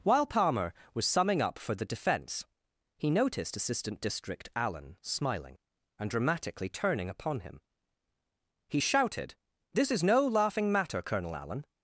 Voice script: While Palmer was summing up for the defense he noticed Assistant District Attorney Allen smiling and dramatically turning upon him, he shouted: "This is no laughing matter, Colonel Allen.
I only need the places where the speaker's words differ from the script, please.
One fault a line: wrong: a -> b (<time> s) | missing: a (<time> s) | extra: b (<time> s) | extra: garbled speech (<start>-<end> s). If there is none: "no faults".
missing: Attorney (4.5 s)